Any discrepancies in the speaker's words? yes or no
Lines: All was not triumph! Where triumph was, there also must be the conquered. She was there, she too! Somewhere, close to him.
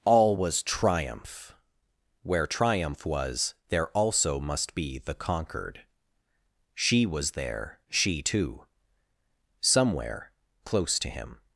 yes